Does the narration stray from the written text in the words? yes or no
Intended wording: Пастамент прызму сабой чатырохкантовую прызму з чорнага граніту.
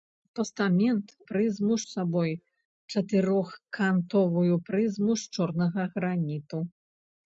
no